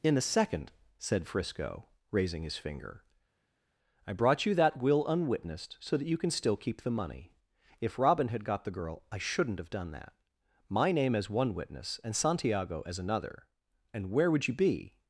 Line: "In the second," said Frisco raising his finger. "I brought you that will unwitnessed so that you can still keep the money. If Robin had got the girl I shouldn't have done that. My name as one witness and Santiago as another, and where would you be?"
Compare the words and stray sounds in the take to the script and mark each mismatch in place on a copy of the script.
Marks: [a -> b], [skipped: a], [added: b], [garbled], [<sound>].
"In [the -> a] second," said Frisco raising his finger. "I brought you that will unwitnessed so that you can still keep the money. If Robin had got the girl I shouldn't have done that. My name as one witness and Santiago as another, and where would you be?"